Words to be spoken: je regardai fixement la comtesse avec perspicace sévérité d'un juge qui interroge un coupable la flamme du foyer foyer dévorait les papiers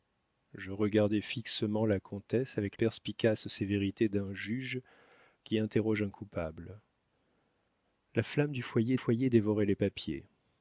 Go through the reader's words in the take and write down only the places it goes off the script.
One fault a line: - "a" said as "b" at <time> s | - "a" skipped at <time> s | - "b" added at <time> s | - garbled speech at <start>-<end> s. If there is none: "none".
none